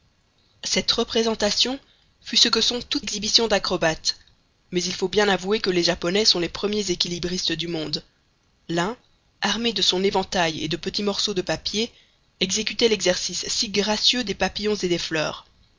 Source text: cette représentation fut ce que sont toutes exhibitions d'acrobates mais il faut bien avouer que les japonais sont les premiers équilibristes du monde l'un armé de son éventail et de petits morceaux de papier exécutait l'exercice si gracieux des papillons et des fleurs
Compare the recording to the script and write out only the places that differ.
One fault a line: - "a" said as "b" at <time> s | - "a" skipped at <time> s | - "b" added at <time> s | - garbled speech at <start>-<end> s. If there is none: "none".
none